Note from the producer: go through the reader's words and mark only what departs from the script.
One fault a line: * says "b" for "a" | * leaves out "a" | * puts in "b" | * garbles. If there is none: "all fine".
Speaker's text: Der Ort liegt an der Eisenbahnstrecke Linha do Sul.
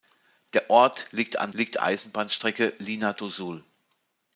* says "liegt" for "der"